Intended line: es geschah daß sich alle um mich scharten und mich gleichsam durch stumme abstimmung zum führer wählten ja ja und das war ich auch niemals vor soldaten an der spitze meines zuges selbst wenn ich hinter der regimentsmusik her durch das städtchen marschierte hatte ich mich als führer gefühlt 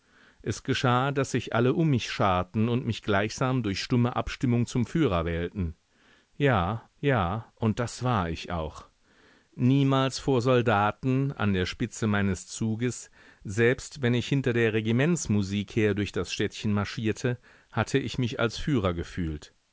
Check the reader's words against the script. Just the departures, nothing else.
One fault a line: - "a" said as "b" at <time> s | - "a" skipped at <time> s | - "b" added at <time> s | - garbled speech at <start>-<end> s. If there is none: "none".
none